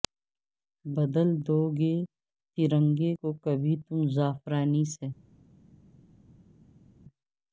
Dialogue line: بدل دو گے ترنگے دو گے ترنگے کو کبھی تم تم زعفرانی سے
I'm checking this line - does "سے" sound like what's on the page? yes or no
yes